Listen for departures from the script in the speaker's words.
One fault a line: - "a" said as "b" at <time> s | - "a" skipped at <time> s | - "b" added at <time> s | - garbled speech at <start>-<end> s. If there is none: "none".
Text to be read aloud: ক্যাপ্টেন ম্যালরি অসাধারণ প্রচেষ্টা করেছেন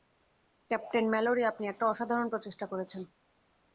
- "আপনি একটা" added at 1.4 s